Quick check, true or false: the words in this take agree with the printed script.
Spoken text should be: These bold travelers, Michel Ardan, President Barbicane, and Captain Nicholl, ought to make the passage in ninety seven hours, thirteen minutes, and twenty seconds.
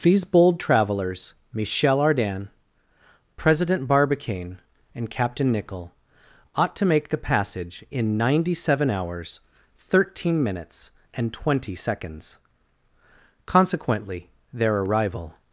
false